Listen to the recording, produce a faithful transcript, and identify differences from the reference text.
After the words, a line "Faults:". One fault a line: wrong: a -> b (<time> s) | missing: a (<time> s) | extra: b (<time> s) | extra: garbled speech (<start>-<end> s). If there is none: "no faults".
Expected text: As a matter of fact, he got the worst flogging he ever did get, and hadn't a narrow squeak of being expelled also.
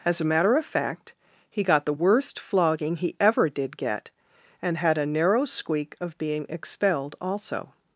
As a matter of fact, he got the worst flogging he ever did get, and had a narrow squeak of being expelled also.
Faults:
wrong: hadn't -> had (4.8 s)